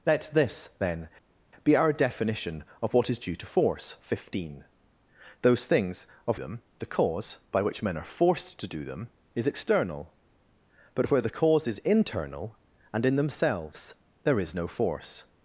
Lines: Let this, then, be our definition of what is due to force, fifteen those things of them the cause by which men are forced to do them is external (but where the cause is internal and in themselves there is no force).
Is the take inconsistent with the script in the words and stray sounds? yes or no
no